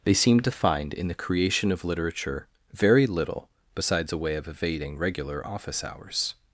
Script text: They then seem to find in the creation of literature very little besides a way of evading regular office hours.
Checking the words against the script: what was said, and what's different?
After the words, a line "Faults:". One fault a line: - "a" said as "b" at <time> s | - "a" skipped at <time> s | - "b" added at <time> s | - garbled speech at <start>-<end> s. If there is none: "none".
They seem to find in the creation of literature very little besides a way of evading regular office hours.
Faults:
- "then" skipped at 0.1 s